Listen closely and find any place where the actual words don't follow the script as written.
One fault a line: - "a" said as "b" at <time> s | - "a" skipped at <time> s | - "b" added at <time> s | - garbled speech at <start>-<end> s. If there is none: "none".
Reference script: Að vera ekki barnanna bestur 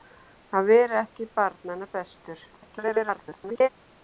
- garbled speech at 2.5-3.7 s